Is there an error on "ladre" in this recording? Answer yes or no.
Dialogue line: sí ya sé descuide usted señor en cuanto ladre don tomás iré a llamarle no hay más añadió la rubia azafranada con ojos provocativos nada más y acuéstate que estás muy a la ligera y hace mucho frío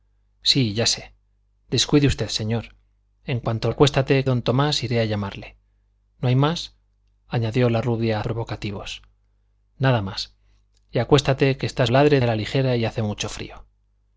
yes